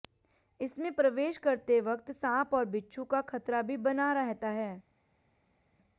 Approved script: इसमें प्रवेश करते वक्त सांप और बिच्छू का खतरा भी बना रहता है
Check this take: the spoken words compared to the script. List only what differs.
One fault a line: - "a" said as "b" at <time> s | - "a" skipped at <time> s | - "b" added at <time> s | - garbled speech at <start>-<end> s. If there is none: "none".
none